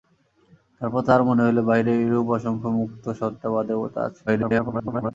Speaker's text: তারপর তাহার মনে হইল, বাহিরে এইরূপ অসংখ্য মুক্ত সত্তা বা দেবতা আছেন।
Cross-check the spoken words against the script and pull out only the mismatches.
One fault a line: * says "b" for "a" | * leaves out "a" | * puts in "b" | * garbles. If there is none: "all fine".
* garbles